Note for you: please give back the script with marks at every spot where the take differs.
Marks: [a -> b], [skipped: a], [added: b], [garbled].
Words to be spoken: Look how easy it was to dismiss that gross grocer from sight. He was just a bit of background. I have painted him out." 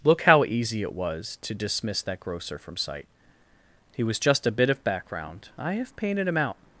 Look how easy it was to dismiss that [skipped: gross] grocer from sight. He was just a bit of background. I have painted him out."